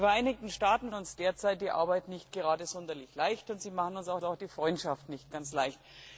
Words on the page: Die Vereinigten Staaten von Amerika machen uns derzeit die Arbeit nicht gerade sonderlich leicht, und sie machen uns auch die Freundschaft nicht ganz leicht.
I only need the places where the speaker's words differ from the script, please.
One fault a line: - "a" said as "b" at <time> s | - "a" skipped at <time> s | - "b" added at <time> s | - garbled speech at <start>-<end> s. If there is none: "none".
- "von Amerika machen" skipped at 0.9 s
- "auch" added at 4.2 s